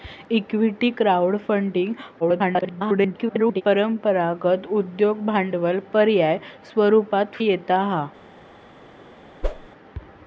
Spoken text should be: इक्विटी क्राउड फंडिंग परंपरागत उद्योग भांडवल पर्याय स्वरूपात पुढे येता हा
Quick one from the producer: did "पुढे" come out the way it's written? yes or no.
no